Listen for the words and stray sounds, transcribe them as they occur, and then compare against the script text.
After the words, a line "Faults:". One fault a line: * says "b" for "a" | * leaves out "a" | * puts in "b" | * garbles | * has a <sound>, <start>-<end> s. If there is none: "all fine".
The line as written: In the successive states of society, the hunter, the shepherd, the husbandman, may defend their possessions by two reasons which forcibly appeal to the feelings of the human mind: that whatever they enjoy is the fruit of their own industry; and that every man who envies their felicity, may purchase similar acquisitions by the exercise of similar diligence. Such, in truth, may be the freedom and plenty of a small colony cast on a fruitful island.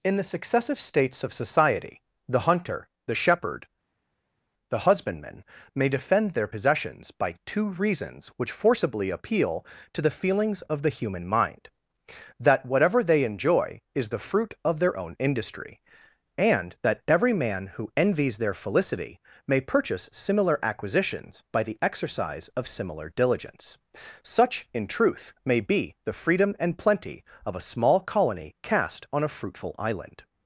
In the successive states of society, the hunter, the shepherd, the husbandman, may defend their possessions by two reasons which forcibly appeal to the feelings of the human mind: that whatever they enjoy is the fruit of their own industry; and that every man who envies their felicity, may purchase similar acquisitions by the exercise of similar diligence. Such, in truth, may be the freedom and plenty of a small colony cast on a fruitful island.
Faults:
all fine